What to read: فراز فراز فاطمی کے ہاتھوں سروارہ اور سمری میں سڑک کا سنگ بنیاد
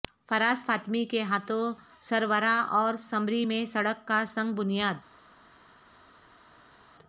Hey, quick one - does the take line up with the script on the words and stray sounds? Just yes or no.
no